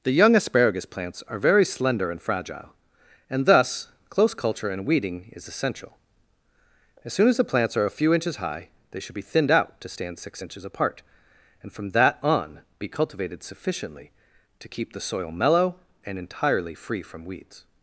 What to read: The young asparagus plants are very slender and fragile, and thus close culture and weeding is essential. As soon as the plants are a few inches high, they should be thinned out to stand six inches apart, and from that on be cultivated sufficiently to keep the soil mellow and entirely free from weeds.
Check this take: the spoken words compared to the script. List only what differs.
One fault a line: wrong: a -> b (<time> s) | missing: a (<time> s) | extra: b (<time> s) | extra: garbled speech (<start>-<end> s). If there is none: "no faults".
no faults